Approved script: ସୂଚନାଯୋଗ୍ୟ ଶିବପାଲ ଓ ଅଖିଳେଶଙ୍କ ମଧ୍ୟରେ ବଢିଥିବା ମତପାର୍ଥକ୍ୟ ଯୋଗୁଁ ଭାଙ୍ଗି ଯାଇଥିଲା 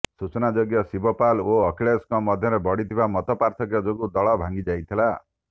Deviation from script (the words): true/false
true